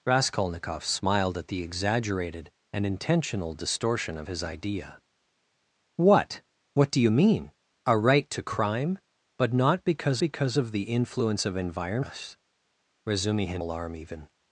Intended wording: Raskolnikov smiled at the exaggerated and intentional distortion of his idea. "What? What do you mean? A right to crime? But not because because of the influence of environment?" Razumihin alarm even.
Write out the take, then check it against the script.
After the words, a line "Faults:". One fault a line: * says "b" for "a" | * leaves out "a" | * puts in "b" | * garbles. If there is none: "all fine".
Raskolnikov smiled at the exaggerated and intentional distortion of his idea. "What? What do you mean? A right to crime? But not because because of the influence of environment?" Razumihin alarm even.
Faults:
all fine